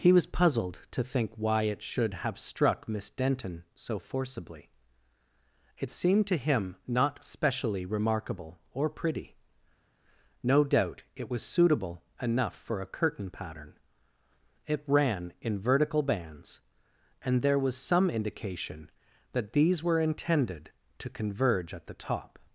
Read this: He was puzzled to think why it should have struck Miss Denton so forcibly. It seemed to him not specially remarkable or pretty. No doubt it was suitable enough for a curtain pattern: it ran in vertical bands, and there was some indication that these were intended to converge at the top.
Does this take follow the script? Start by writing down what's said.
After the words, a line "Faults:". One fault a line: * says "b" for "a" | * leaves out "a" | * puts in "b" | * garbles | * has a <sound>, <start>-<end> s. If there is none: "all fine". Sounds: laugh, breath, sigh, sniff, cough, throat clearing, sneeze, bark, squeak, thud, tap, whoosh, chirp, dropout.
He was puzzled to think why it should have struck Miss Denton so forcibly. It seemed to him not specially remarkable or pretty. No doubt it was suitable enough for a curtain pattern: it ran in vertical bands, and there was some indication that these were intended to converge at the top.
Faults:
all fine